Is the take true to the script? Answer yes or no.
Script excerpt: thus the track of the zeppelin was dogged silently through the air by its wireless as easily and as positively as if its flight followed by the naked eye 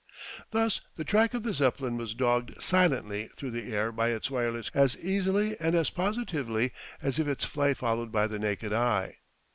yes